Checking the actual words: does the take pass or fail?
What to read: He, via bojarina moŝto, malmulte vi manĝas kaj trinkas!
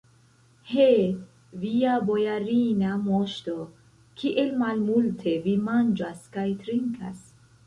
fail